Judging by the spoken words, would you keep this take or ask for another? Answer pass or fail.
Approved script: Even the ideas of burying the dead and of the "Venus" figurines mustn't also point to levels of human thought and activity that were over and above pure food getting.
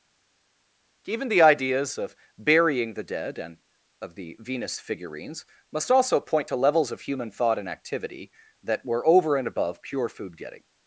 fail